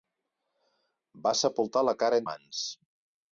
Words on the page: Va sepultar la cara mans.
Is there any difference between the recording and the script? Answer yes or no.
no